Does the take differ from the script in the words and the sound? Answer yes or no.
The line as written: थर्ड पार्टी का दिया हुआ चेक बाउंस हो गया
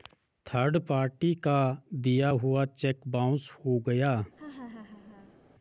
yes